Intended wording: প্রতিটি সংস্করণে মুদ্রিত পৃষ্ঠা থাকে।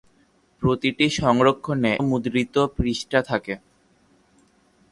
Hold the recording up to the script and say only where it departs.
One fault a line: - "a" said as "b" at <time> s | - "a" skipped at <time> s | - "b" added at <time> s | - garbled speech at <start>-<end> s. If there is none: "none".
none